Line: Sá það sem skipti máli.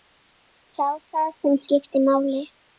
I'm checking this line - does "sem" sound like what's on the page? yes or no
yes